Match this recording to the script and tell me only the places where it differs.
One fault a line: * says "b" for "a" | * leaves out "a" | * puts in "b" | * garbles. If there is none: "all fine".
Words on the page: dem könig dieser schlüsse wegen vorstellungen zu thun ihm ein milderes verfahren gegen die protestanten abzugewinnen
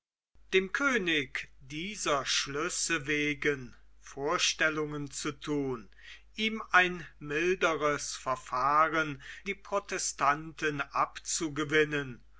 * leaves out "gegen"